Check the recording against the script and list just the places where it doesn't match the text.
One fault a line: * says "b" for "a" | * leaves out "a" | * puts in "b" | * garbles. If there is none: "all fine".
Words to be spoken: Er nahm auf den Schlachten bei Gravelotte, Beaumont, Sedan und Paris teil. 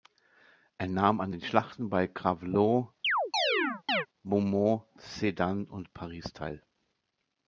* says "an" for "auf"